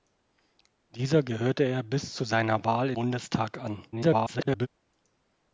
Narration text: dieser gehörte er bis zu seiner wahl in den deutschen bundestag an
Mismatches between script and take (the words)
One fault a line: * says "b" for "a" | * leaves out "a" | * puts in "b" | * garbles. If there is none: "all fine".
* leaves out "den deutschen"
* garbles